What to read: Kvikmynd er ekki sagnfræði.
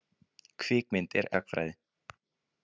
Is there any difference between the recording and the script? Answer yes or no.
yes